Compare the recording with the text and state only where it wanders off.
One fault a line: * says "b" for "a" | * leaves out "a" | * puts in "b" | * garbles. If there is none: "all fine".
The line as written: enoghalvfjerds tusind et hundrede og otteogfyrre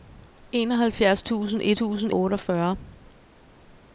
* says "tusind" for "hundrede"